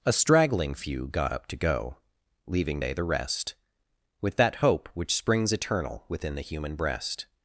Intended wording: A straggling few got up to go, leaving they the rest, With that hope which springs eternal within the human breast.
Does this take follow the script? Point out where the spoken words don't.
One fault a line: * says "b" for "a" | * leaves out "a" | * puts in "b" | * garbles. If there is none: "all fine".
all fine